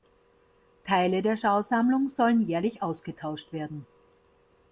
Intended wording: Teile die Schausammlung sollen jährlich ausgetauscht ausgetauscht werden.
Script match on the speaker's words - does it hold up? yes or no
no